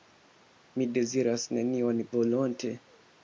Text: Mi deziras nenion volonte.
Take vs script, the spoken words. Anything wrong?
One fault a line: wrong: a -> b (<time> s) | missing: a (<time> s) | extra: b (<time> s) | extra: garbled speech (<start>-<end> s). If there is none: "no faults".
no faults